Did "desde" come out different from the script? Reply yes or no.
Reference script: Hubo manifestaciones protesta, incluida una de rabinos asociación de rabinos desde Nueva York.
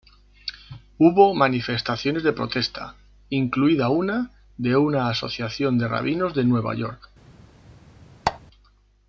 yes